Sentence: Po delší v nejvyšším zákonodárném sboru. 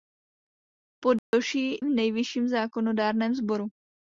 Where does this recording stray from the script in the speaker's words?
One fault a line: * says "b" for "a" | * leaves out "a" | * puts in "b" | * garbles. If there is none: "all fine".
all fine